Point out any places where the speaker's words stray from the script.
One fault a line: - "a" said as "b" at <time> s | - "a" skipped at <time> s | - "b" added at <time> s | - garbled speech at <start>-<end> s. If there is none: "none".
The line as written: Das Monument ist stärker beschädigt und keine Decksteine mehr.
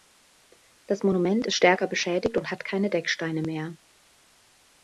- "hat" added at 2.5 s